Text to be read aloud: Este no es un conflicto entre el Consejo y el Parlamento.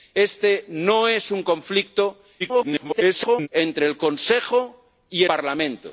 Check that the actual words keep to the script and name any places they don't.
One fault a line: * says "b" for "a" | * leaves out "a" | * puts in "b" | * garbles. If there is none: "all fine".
* garbles
* leaves out "el"